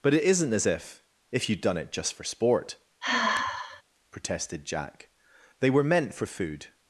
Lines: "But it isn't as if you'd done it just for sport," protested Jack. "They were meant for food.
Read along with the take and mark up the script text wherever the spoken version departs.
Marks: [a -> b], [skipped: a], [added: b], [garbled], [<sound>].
"But it isn't as if [added: if] you'd done it just for sport," [sigh] protested Jack. "They were meant for food.